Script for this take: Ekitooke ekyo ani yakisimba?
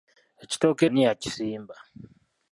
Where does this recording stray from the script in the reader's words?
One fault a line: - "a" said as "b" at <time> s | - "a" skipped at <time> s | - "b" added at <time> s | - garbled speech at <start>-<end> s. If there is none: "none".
- "ekyo" skipped at 0.8 s